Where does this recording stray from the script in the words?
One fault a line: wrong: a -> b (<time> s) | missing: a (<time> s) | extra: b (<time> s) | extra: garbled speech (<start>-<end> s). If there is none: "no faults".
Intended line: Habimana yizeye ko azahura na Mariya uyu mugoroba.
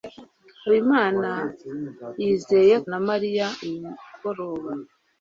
missing: ko azahura (2.8 s)